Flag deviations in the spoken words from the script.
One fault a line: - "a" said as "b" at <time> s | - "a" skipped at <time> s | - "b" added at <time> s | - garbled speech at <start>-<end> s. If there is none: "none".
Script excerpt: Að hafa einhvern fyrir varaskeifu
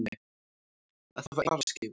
- "einhvern fyrir" skipped at 1.4 s